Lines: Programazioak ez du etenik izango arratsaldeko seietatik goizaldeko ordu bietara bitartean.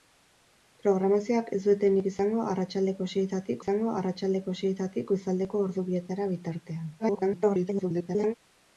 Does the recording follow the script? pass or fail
fail